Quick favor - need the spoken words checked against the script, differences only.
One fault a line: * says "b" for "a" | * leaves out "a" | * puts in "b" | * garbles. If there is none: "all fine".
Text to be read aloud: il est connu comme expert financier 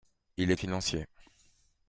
* leaves out "connu comme expert"